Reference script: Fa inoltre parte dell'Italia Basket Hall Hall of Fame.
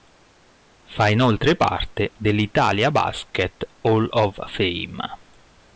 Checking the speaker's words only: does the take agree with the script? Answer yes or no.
no